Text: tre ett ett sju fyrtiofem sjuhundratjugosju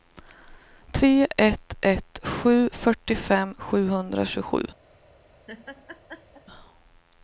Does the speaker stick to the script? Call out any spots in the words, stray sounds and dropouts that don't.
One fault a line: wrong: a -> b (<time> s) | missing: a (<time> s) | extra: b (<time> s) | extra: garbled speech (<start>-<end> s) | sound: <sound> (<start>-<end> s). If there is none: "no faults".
sound: laugh (5.5-6.4 s)